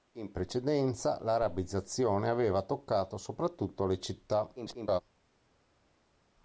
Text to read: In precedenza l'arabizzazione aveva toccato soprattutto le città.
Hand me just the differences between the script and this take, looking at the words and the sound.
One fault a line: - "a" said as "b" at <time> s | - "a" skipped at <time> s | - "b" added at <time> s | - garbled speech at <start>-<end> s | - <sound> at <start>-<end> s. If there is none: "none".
- garbled speech at 4.5-5.0 s